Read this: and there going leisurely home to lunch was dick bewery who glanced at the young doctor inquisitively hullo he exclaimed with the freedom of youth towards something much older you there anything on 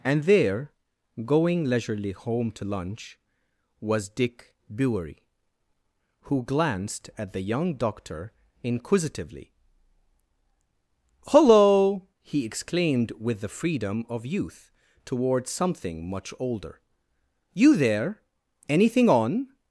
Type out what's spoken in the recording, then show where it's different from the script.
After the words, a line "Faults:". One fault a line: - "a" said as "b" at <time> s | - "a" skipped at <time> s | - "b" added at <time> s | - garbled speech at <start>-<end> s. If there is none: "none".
and there going leisurely home to lunch was dick bewery who glanced at the young doctor inquisitively hullo he exclaimed with the freedom of youth towards something much older you there anything on
Faults:
none